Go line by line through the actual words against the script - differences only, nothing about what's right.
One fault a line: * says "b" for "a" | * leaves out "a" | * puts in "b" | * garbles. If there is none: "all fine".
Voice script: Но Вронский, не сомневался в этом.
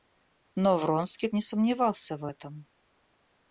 all fine